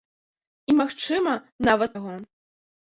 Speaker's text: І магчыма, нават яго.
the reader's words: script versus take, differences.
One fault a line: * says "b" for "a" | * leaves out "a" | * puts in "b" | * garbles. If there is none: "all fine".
all fine